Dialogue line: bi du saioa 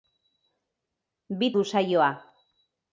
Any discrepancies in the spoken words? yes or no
no